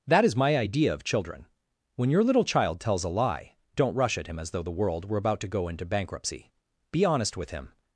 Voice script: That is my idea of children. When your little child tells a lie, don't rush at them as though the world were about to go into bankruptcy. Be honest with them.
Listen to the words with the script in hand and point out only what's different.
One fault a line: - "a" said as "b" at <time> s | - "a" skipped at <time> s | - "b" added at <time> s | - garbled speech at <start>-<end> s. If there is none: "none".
- "them" said as "him" at 4.3 s
- "them" said as "him" at 7.5 s